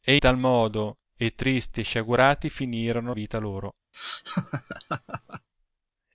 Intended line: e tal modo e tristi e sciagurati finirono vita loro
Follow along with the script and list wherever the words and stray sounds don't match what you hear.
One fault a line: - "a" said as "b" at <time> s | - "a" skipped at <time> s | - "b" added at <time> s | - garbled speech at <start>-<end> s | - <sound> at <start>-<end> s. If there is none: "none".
- laugh at 3.9-5.5 s